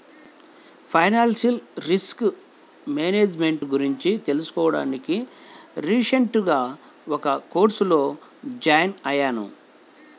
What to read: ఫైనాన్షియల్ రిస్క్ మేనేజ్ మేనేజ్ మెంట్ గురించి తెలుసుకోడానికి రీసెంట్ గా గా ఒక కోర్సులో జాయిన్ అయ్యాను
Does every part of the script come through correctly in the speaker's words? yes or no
no